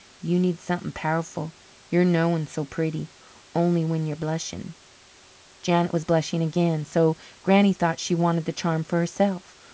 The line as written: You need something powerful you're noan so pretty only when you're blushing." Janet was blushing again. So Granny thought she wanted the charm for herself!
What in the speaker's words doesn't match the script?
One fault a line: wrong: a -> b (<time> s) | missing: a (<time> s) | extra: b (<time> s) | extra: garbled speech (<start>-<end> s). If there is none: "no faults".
no faults